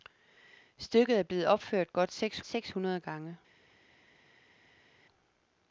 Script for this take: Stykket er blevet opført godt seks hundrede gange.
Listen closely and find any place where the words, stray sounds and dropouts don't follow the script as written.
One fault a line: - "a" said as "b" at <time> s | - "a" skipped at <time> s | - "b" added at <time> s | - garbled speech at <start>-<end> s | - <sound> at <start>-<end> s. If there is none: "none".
- "seks" added at 2.4 s